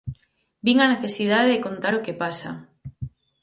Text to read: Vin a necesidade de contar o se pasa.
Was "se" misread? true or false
true